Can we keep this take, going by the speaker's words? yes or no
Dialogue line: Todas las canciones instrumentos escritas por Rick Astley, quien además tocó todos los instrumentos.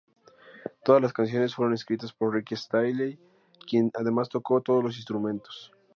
no